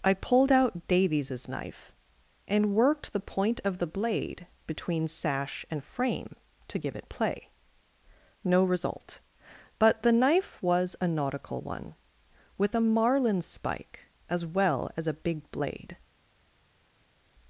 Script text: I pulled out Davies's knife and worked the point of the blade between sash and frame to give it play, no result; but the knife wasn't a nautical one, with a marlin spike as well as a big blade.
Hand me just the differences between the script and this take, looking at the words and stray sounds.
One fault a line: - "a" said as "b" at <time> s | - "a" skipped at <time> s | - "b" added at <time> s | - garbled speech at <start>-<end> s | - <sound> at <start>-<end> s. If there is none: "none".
- "wasn't" said as "was" at 10.6 s